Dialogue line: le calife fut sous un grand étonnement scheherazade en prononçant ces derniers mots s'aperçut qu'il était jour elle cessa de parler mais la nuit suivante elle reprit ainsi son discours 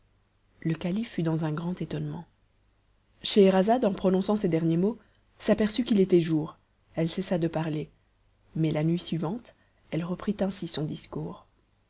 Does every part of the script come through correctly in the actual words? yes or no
no